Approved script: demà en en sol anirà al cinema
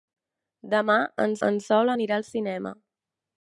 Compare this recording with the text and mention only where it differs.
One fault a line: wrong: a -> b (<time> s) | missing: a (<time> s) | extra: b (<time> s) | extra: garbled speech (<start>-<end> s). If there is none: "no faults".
no faults